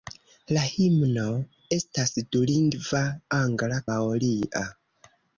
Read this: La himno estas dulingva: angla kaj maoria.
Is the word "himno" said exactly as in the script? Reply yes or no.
yes